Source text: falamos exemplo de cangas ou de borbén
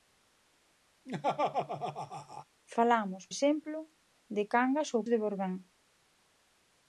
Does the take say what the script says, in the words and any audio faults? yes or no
no